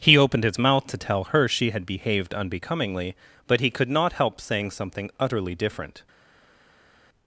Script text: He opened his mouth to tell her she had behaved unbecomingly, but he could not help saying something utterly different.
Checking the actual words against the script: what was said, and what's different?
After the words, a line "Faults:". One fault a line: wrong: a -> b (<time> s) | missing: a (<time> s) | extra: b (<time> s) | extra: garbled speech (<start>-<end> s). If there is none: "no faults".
He opened his mouth to tell her she had behaved unbecomingly, but he could not help saying something utterly different.
Faults:
no faults